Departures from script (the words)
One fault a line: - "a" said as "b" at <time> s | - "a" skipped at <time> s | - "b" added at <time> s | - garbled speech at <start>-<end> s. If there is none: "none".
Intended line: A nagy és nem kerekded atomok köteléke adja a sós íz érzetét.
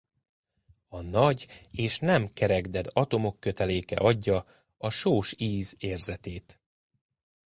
none